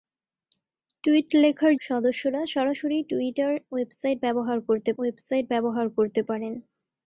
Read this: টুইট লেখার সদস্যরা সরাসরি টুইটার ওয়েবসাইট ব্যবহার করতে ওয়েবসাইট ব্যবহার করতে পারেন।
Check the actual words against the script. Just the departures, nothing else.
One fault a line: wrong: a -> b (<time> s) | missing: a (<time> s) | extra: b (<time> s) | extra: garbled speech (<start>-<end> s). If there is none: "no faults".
no faults